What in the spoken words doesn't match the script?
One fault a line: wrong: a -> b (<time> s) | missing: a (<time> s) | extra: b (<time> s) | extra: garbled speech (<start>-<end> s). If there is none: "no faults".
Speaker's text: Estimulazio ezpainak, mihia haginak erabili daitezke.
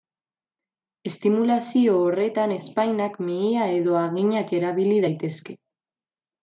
extra: horretan (2.1 s)
extra: edo (3.8 s)